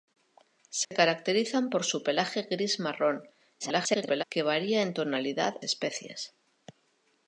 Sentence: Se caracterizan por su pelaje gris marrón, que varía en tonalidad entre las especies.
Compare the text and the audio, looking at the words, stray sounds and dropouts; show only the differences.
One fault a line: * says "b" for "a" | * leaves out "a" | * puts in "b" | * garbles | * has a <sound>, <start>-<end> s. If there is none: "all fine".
* has a dropout, 0.8-0.9 s
* garbles
* leaves out "entre las"